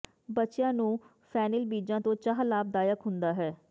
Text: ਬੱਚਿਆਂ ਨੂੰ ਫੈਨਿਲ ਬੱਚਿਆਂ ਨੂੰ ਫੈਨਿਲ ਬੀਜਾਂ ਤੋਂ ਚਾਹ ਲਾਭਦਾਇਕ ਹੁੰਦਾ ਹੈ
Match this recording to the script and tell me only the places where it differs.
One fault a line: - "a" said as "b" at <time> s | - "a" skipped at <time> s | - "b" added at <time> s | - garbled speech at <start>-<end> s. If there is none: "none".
- "ਬੱਚਿਆਂ ਨੂੰ ਫੈਨਿਲ" skipped at 1.6 s